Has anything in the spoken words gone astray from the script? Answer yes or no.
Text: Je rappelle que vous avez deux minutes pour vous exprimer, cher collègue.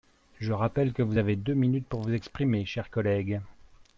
no